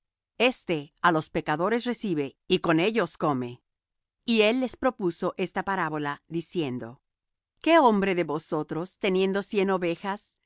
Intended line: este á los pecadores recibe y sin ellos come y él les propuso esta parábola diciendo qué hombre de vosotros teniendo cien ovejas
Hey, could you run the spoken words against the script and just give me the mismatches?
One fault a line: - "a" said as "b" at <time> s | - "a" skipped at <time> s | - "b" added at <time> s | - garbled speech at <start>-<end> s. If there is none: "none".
- "sin" said as "con" at 2.6 s